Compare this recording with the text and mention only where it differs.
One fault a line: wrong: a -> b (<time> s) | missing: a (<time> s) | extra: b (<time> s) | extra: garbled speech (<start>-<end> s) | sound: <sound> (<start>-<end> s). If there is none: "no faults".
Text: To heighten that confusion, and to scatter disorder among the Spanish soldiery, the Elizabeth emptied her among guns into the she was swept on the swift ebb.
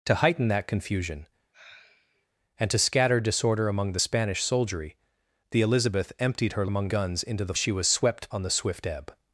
sound: sigh (1.5-2.3 s)